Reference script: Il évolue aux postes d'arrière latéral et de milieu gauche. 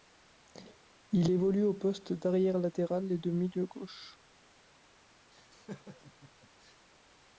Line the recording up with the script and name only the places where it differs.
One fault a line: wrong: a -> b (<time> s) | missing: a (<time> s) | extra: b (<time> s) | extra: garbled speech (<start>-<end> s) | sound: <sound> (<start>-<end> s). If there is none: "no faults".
sound: laugh (5.3-6.9 s)